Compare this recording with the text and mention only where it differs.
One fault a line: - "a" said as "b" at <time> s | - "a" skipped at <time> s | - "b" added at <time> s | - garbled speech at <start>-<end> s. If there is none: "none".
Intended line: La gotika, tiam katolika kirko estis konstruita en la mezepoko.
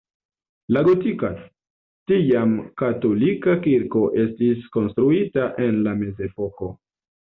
none